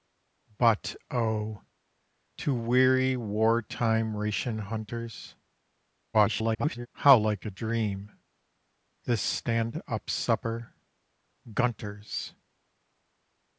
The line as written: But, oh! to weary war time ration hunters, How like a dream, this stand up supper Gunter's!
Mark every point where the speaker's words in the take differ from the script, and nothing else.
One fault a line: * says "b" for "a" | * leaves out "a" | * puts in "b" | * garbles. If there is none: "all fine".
* garbles